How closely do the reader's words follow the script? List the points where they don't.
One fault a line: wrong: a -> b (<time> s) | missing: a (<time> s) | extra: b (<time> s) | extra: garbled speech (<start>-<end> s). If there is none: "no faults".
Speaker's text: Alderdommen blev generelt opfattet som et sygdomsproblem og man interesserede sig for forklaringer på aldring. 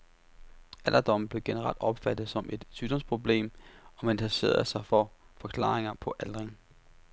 no faults